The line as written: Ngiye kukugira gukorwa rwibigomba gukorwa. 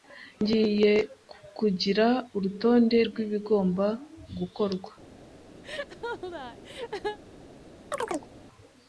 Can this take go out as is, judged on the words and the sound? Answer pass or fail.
fail